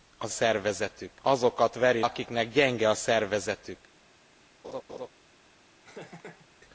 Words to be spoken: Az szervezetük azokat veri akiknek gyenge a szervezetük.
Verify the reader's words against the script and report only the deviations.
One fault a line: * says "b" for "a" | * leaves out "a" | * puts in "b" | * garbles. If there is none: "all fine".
all fine